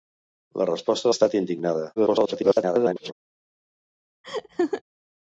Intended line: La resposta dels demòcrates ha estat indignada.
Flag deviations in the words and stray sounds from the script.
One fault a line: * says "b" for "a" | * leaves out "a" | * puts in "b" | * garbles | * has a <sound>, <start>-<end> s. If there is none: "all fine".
* leaves out "dels demòcrates"
* garbles
* has a laugh, 4.2-4.8 s